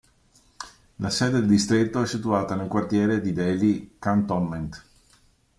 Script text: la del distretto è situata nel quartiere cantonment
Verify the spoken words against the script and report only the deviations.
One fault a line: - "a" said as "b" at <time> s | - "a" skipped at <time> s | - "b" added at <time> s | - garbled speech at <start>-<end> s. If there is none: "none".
- "sede" added at 1.1 s
- "di delhi" added at 3.2 s